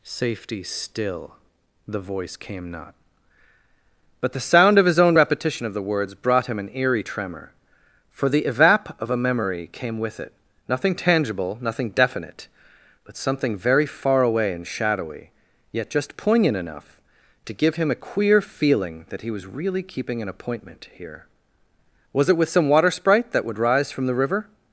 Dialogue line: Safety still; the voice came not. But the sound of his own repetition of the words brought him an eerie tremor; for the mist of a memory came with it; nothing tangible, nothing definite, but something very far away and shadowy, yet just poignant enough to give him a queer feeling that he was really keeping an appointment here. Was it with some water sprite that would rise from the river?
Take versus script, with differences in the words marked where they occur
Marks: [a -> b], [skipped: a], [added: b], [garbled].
Safety still; the voice came not. But the sound of his own repetition of the words brought him an eerie tremor; for the [mist -> evap] of a memory came with it; nothing tangible, nothing definite, but something very far away and shadowy, yet just poignant enough to give him a queer feeling that he was really keeping an appointment here. Was it with some water sprite that would rise from the river?